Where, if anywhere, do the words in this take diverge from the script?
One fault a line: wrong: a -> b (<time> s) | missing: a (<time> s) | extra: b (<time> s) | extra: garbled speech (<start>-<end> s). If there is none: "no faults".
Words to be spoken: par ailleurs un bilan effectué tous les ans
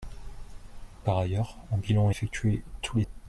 no faults